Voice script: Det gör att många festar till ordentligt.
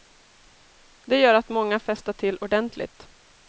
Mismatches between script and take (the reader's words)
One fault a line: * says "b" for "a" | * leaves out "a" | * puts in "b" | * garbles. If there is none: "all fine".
all fine